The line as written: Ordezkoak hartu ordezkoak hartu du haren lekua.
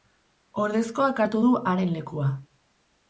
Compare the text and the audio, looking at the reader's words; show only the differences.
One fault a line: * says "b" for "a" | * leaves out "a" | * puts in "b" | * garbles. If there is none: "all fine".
* leaves out "ordezkoak hartu"